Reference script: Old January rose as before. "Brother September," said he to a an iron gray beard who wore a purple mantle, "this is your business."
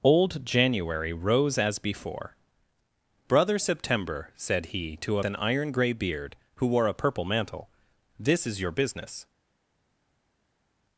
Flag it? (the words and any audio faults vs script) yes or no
no